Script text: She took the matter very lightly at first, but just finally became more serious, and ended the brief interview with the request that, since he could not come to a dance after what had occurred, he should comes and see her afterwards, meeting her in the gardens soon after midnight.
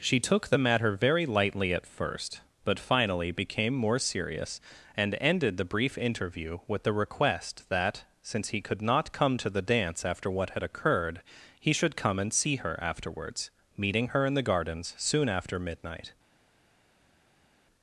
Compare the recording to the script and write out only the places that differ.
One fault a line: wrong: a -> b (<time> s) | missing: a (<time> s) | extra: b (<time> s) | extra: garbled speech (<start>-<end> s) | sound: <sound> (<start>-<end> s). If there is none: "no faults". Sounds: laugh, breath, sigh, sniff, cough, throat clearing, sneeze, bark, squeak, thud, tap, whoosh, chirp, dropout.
missing: just (2.8 s)
wrong: a -> the (9.5 s)
wrong: comes -> come (11.9 s)